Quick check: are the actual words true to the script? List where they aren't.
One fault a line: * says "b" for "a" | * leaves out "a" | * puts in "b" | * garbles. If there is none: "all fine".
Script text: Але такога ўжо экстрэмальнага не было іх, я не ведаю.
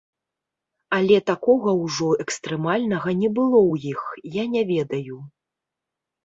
* puts in "ў"